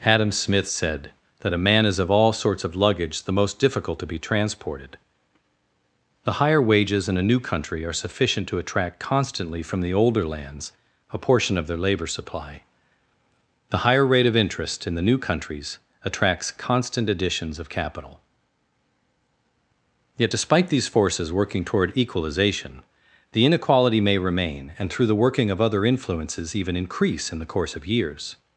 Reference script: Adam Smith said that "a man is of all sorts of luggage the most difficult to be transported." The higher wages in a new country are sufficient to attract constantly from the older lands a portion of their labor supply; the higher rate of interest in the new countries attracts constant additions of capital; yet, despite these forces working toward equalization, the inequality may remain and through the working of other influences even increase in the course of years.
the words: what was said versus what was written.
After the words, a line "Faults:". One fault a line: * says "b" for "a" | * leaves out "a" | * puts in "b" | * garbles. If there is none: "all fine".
Adam Smith said that "a man is of all sorts of luggage the most difficult to be transported." The higher wages in a new country are sufficient to attract constantly from the older lands a portion of their labor supply; the higher rate of interest in the new countries attracts constant additions of capital; yet, despite these forces working toward equalization, the inequality may remain and through the working of other influences even increase in the course of years.
Faults:
all fine